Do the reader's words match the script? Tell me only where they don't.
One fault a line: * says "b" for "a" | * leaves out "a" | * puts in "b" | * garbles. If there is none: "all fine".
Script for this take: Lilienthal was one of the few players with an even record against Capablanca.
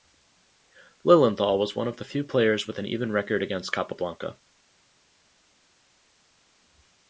all fine